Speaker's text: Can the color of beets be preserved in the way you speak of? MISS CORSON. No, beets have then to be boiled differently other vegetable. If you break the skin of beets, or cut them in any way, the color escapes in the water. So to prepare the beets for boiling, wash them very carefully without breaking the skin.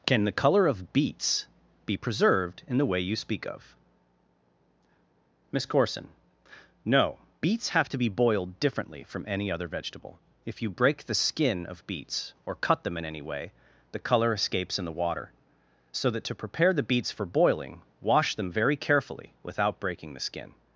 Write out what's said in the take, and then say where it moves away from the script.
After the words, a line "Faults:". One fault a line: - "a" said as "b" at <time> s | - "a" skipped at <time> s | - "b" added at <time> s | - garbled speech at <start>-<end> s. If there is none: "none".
Can the color of beets be preserved in the way you speak of? MISS CORSON. No, beets have to be boiled differently from any other vegetable. If you break the skin of beets, or cut them in any way, the color escapes in the water. So that to prepare the beets for boiling, wash them very carefully without breaking the skin.
Faults:
- "then" skipped at 7.9 s
- "from any" added at 9.0 s
- "that" added at 16.1 s